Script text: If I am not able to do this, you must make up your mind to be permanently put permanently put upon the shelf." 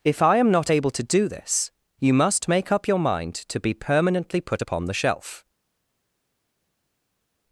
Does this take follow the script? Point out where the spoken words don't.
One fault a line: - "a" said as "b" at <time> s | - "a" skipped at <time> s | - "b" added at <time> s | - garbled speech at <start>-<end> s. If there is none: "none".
- "permanently put" skipped at 4.6 s